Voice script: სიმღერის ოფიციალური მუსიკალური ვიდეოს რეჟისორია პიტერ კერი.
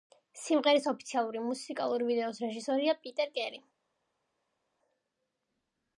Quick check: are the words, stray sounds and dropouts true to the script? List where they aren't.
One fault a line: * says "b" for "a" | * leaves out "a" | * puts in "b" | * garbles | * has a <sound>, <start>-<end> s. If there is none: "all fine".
all fine